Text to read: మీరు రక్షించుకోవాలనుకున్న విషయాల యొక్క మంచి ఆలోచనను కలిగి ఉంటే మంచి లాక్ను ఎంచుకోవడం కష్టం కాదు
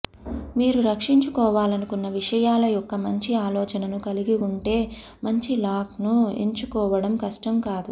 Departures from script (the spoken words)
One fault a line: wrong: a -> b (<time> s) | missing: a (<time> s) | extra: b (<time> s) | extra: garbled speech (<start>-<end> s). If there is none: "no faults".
no faults